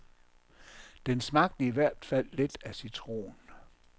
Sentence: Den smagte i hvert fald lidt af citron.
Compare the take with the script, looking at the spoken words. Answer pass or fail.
pass